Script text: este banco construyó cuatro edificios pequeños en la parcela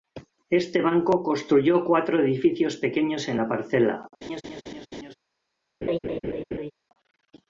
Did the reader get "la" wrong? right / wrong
right